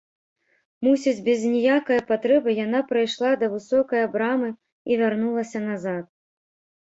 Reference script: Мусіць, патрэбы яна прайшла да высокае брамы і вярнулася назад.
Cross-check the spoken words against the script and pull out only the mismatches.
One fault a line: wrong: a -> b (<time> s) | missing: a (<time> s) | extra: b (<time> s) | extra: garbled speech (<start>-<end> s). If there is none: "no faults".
extra: без ніякае (1.3 s)